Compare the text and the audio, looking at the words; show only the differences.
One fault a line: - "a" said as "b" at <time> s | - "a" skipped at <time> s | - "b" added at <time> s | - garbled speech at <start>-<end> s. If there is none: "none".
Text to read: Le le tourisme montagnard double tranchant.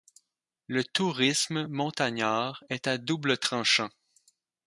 - "le" skipped at 0.8 s
- "est à" added at 2.7 s